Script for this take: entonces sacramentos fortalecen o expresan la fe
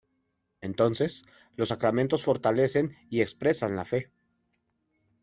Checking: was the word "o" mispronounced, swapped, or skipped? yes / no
yes